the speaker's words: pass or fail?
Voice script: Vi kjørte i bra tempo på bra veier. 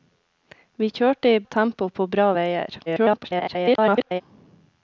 fail